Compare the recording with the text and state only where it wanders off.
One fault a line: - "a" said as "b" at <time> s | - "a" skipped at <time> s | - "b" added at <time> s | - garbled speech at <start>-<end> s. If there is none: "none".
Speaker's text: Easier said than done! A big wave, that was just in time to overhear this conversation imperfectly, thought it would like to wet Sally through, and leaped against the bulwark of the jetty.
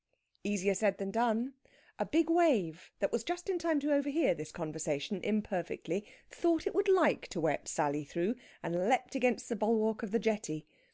none